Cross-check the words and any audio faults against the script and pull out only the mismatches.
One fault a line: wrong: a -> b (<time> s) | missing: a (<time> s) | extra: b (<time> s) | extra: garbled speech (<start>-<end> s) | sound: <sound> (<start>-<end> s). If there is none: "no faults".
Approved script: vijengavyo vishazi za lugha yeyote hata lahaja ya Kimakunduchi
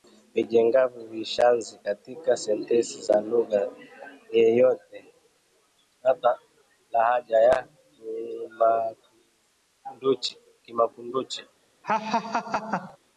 extra: katika sentensi (1.8 s)
sound: laugh (11.8-13.0 s)